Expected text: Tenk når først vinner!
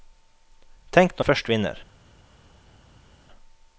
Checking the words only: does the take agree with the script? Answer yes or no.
yes